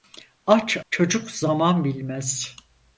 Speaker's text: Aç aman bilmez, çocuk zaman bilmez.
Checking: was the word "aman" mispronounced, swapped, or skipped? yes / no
yes